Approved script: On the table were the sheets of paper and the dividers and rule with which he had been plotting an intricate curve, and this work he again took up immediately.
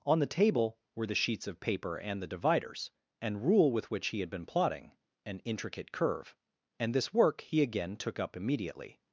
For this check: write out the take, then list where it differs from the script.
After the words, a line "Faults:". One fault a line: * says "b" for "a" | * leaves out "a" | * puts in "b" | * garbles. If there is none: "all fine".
On the table were the sheets of paper and the dividers and rule with which he had been plotting an intricate curve, and this work he again took up immediately.
Faults:
all fine